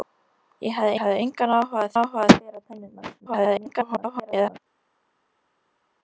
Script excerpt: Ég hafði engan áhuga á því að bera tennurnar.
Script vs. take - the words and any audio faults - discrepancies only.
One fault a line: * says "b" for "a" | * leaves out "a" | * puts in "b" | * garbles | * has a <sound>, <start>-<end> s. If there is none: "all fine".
* puts in "hafði"
* says "áhuga" for "því"
* garbles